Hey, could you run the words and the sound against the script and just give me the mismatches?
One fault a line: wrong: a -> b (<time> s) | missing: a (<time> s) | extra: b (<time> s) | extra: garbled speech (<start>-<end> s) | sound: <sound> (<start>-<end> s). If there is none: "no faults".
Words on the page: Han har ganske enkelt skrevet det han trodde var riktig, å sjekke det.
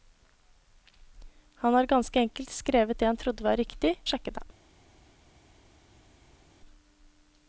no faults